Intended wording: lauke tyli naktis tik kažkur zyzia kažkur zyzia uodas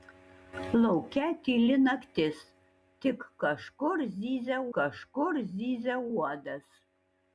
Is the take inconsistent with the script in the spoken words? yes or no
no